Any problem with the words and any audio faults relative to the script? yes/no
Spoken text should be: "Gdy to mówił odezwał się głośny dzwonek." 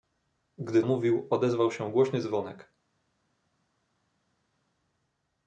yes